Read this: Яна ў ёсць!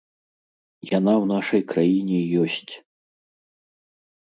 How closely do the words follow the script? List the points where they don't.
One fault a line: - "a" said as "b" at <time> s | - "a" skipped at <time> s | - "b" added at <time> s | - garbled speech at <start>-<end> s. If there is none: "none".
- "нашай краіне" added at 1.3 s